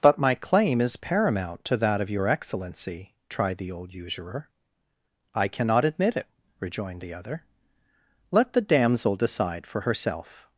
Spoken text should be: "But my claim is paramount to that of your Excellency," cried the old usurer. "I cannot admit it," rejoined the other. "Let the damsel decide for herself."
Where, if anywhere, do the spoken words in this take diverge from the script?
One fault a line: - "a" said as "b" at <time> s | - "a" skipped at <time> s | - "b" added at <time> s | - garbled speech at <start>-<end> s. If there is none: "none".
- "cried" said as "tried" at 3.3 s